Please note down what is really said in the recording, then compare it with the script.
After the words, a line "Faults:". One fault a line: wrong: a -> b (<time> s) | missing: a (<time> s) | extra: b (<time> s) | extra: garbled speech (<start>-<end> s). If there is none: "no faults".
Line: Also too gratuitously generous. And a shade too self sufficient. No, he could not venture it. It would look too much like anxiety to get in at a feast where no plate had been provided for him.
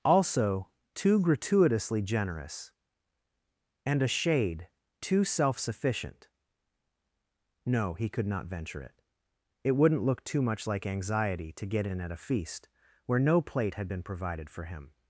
Also too gratuitously generous. And a shade too self sufficient. No, he could not venture it. It wouldn't look too much like anxiety to get in at a feast where no plate had been provided for him.
Faults:
wrong: would -> wouldn't (9.7 s)